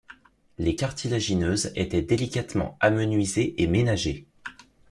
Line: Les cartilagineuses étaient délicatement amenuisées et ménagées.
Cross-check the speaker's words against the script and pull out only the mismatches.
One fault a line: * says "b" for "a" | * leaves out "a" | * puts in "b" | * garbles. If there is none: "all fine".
all fine